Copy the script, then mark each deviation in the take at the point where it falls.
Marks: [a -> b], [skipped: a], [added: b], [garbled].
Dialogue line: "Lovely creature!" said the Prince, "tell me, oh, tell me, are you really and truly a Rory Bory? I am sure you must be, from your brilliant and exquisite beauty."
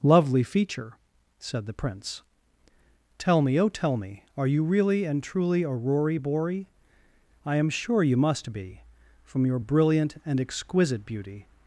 "Lovely [creature!" -> feature] said the Prince, "tell me, oh, tell me, are you really and truly a Rory Bory? I am sure you must be, from your brilliant and exquisite beauty."